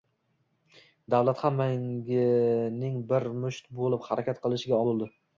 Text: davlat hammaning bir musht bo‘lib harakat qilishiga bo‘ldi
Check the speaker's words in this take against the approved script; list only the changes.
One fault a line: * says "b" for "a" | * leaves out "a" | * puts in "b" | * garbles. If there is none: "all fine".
all fine